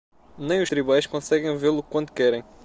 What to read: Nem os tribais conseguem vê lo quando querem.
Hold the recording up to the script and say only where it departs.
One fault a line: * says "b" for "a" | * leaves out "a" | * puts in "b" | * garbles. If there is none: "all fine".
all fine